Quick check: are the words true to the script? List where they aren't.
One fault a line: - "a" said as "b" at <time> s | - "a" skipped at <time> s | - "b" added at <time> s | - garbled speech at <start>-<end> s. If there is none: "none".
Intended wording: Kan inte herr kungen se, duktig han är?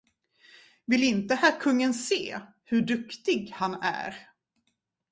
- "Kan" said as "Vill" at 0.8 s
- "hur" added at 2.6 s